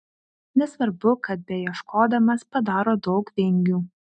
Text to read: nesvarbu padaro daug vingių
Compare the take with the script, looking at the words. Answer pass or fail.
fail